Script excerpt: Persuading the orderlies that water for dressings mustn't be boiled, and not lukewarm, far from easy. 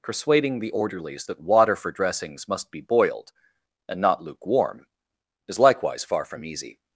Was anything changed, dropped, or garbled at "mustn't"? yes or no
yes